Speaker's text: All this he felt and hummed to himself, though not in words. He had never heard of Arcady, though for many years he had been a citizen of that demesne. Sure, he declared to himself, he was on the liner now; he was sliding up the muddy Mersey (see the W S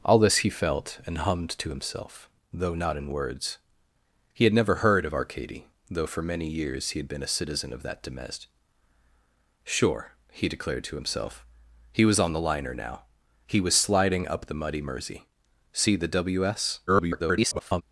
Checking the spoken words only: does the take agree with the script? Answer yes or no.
no